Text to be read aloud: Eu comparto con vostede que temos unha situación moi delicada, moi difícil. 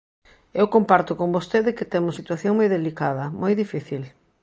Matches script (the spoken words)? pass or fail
fail